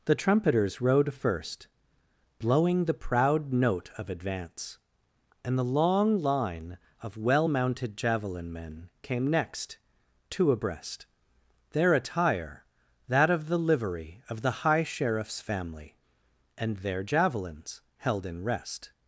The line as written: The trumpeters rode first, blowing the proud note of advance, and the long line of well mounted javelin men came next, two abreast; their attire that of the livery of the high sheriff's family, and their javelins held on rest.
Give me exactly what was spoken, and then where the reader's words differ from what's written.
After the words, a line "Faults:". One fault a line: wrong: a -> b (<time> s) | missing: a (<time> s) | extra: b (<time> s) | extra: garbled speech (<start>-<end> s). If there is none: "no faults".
The trumpeters rode first, blowing the proud note of advance, and the long line of well mounted javelin men came next, two abreast; their attire that of the livery of the high sheriff's family, and their javelins held in rest.
Faults:
wrong: on -> in (18.2 s)